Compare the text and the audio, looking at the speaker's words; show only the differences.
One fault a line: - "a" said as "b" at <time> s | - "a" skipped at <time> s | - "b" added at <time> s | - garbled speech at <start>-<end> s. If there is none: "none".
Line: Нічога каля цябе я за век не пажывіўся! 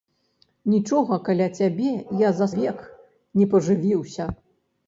none